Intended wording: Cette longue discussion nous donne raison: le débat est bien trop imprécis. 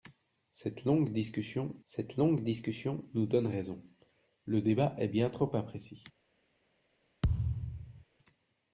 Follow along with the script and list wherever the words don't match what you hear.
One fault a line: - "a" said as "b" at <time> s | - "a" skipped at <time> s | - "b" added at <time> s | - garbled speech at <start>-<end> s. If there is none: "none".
- "cette longue discussion" added at 1.8 s